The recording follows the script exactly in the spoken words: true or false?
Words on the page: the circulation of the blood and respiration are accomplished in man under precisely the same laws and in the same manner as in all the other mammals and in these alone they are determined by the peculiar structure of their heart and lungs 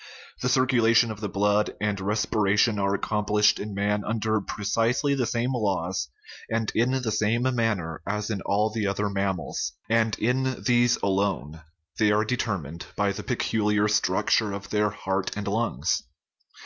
true